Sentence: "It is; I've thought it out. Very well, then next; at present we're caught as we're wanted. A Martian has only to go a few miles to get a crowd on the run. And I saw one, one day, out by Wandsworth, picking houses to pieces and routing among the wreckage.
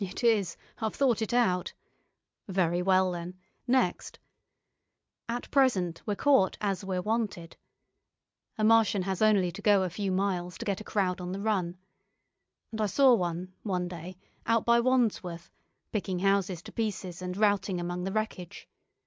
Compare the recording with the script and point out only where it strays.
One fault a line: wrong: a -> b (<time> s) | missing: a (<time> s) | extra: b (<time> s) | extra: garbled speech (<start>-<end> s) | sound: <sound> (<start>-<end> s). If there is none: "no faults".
no faults